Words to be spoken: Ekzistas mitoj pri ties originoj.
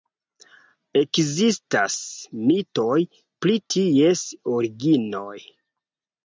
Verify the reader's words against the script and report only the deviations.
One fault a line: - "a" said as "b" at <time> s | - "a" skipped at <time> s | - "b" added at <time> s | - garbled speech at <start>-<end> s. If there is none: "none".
none